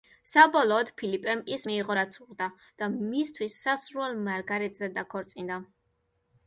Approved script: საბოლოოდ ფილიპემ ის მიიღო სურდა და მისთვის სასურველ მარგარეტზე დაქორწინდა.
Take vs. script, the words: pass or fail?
fail